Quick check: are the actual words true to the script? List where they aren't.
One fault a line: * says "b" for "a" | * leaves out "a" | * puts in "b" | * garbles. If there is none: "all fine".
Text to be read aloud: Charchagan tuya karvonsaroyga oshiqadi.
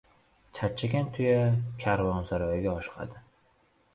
all fine